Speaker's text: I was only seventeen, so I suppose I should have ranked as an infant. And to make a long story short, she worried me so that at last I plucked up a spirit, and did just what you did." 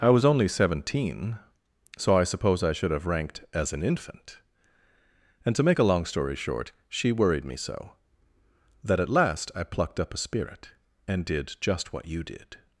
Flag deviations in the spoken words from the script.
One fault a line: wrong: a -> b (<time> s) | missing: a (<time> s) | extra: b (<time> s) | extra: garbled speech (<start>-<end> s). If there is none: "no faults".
no faults